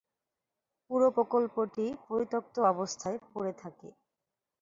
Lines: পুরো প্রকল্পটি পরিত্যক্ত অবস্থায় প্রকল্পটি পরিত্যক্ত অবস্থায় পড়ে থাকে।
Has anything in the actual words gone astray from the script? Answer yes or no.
yes